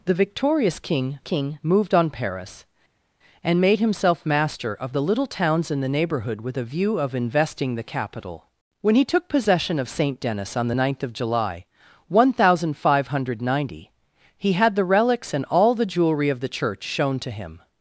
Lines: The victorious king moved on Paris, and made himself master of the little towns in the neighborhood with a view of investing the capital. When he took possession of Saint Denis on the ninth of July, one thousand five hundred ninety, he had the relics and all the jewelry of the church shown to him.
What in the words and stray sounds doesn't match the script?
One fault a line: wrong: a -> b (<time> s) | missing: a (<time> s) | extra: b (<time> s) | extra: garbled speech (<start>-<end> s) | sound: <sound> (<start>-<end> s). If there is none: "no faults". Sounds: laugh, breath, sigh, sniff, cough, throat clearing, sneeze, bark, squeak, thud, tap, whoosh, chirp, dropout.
extra: king (1.2 s)